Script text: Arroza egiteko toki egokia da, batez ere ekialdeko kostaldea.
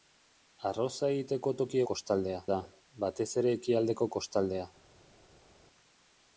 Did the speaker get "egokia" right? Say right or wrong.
wrong